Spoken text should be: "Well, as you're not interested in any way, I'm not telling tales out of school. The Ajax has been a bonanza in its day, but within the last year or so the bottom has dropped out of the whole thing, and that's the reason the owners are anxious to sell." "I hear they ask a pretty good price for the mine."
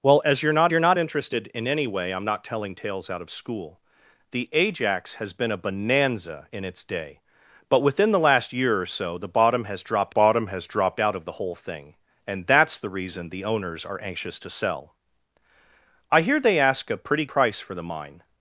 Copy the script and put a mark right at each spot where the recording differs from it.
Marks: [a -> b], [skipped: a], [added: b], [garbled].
"Well, as you're not [added: you're not] interested in any way, I'm not telling tales out of school. The Ajax has been a bonanza in its day, but within the last year or so the bottom has dropped [added: bottom has dropped] out of the whole thing, and that's the reason the owners are anxious to sell." "I hear they ask a pretty [skipped: good] price for the mine."